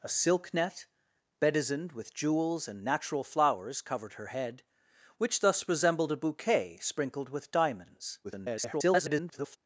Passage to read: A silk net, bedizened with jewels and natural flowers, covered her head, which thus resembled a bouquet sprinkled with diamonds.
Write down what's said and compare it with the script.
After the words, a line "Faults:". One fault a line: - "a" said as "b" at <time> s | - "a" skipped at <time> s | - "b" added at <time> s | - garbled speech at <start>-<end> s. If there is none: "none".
A silk net, bedizened with jewels and natural flowers, covered her head, which thus resembled a bouquet sprinkled with diamonds. [garbled]
Faults:
- garbled speech at 8.2-9.6 s